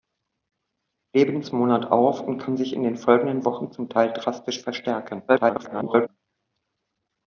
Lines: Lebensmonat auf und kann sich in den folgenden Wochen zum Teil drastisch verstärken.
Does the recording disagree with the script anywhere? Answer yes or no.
yes